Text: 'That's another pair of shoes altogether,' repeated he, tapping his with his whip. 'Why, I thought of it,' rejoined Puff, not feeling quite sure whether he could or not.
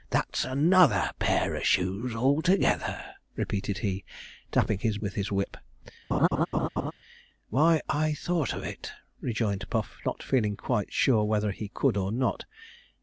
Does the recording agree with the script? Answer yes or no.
yes